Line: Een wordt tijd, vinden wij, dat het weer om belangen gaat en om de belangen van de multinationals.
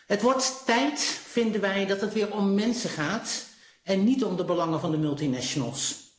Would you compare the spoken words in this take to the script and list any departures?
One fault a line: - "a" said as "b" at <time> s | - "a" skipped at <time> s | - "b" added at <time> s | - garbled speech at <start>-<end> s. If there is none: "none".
- "Een" said as "Het" at 0.1 s
- "belangen" said as "mensen" at 2.5 s
- "niet" added at 4.0 s